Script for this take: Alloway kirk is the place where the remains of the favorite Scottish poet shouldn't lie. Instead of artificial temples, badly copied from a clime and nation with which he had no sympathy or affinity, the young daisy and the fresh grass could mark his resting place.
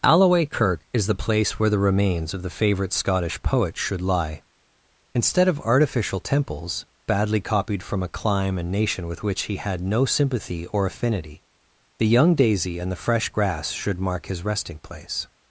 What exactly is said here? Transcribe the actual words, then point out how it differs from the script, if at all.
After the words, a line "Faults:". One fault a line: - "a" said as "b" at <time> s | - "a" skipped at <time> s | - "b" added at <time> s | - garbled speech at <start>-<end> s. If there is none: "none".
Alloway kirk is the place where the remains of the favorite Scottish poet should lie. Instead of artificial temples, badly copied from a clime and nation with which he had no sympathy or affinity, the young daisy and the fresh grass should mark his resting place.
Faults:
- "shouldn't" said as "should" at 3.8 s
- "could" said as "should" at 13.7 s